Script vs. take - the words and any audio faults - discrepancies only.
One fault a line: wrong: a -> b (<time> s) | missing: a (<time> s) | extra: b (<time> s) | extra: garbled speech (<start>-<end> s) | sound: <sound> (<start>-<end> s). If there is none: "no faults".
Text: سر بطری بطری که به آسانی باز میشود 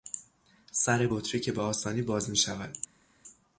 missing: بطری (1.4 s)